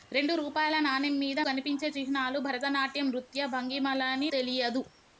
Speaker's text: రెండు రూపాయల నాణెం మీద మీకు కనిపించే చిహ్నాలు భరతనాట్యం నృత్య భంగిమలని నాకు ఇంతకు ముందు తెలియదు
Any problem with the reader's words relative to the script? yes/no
yes